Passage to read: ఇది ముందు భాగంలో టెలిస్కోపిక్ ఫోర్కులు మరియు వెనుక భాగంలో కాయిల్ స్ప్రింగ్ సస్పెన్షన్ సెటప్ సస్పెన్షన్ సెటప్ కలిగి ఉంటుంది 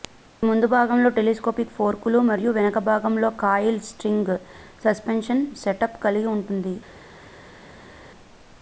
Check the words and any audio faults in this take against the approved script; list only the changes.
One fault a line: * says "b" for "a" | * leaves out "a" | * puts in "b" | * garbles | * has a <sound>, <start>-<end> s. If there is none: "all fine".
* leaves out "సస్పెన్షన్ సెటప్"